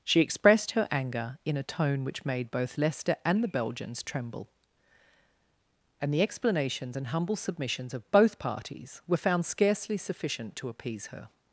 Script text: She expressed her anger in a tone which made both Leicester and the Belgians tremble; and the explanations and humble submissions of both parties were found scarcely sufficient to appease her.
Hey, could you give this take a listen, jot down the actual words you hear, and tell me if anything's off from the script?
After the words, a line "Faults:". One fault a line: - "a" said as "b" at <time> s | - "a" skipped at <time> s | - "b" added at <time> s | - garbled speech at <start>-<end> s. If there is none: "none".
She expressed her anger in a tone which made both Leicester and the Belgians tremble; and the explanations and humble submissions of both parties were found scarcely sufficient to appease her.
Faults:
none